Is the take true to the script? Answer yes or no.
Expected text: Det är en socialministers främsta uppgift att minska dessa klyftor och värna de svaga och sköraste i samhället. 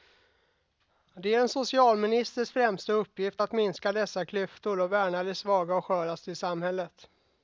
yes